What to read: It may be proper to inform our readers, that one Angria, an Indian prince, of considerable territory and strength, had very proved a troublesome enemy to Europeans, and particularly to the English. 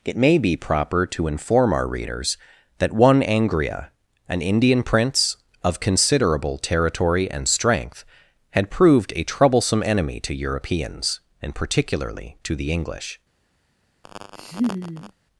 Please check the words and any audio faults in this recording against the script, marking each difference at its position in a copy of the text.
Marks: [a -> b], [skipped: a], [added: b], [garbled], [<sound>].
It may be proper to inform our readers, that one Angria, an Indian prince, of considerable territory and strength, had [skipped: very] proved a troublesome enemy to Europeans, and particularly to the English. [laugh]